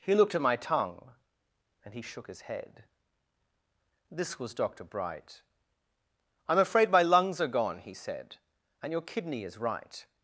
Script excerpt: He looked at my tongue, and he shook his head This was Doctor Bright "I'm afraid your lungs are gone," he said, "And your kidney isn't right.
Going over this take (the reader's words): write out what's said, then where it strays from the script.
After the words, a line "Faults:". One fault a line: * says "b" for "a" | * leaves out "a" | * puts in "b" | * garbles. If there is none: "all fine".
He looked at my tongue, and he shook his head This was Doctor Bright "I'm afraid my lungs are gone," he said, "And your kidney is right.
Faults:
* says "my" for "your"
* says "is" for "isn't"